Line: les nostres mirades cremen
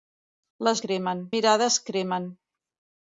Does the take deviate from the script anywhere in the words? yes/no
yes